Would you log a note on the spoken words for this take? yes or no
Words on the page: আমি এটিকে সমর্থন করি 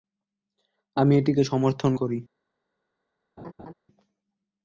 no